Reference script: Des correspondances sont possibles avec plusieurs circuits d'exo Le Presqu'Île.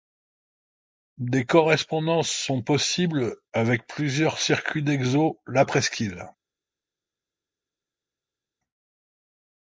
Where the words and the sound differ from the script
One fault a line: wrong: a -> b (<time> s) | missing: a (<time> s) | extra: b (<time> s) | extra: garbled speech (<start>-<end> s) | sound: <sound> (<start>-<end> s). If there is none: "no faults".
wrong: Le -> La (5.5 s)